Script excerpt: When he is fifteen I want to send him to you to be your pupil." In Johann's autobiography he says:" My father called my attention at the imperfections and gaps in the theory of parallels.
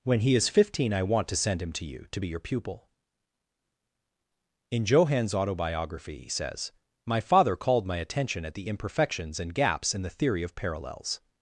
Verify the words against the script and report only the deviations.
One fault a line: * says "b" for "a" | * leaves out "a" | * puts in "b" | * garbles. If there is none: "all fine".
all fine